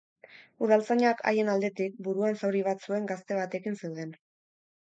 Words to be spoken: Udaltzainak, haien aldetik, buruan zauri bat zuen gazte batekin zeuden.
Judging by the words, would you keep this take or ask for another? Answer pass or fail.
pass